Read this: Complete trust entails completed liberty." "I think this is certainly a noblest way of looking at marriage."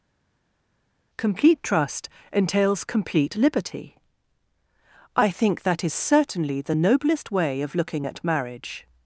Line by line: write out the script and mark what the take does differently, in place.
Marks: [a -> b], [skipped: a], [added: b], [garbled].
Complete trust entails [completed -> complete] liberty." "I think [this -> that] is certainly [a -> the] noblest way of looking at marriage."